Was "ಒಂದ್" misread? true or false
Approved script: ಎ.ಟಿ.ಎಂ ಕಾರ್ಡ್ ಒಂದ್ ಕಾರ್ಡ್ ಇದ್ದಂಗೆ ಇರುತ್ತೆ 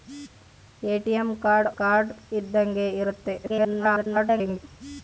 true